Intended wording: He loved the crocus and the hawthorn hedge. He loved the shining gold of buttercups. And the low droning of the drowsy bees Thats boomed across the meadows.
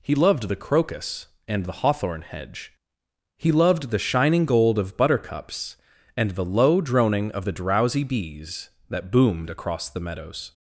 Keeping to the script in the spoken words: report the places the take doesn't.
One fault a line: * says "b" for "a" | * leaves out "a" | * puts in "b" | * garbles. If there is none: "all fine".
* says "That" for "Thats"